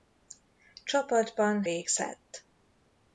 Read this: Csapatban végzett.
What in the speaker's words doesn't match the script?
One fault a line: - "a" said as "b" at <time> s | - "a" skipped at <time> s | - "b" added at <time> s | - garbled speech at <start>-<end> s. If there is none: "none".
none